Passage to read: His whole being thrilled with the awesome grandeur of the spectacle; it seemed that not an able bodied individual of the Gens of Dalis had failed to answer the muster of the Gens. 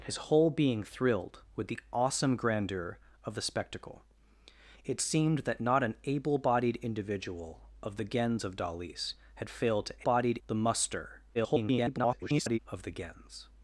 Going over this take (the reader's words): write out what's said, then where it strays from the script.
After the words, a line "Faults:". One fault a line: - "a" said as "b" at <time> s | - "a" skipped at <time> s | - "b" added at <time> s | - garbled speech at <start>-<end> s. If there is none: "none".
His whole being thrilled with the awesome grandeur of the spectacle; it seemed that not an able bodied individual of the Gens of Dalis had failed to bodied the muster [garbled] of the Gens.
Faults:
- "answer" said as "bodied" at 10.0 s
- garbled speech at 11.3-12.6 s